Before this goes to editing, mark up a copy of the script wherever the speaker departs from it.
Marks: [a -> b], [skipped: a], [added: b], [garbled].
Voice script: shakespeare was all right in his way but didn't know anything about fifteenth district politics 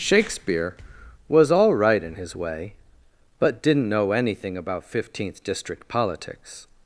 shakespeare was all right in his way but didn't know anything about fifteenth district politics